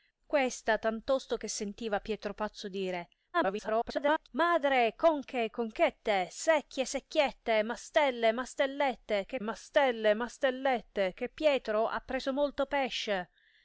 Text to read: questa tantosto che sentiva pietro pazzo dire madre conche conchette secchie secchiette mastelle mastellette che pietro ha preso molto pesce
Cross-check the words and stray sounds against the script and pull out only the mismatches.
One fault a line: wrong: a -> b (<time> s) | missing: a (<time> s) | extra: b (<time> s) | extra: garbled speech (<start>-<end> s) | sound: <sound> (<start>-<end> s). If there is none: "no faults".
extra: garbled speech (3.3-4.3 s)
extra: mastelle mastellette che (9.4 s)